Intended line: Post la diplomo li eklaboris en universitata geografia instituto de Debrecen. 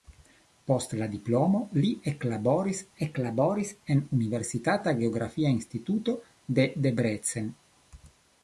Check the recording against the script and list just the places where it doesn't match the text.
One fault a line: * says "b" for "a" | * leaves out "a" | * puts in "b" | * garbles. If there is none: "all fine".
* puts in "eklaboris"